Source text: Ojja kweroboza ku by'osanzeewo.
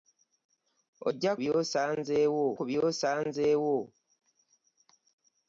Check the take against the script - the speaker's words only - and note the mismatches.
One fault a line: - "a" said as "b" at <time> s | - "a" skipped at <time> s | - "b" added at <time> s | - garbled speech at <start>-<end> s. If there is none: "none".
- "kweroboza" said as "by'osanzeewo" at 1.4 s